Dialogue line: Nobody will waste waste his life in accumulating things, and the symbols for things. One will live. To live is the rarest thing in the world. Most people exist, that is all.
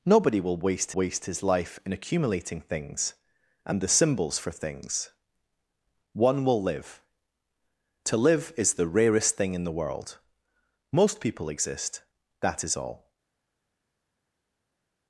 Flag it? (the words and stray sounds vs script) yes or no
no